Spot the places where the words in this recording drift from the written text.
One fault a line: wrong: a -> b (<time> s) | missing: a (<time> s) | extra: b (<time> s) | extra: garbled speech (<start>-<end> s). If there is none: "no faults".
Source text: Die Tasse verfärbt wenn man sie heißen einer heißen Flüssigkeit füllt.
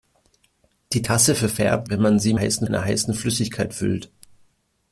no faults